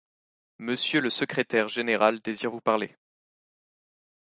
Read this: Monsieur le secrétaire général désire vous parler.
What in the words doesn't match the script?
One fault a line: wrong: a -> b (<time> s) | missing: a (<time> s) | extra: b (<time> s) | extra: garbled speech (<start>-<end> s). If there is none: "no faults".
no faults